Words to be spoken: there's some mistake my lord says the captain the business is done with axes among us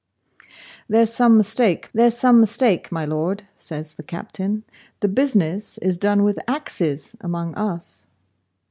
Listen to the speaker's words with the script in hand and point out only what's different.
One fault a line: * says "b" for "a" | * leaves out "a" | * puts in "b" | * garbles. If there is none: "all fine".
* puts in "there's some mistake"